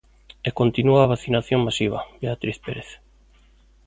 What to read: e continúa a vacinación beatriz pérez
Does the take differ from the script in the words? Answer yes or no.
yes